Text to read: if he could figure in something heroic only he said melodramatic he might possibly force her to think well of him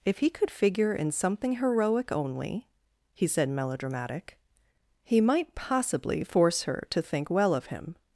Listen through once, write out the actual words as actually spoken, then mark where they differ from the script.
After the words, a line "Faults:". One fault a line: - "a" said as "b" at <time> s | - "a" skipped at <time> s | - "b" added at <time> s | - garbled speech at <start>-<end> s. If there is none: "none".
if he could figure in something heroic only he said melodramatic he might possibly force her to think well of him
Faults:
none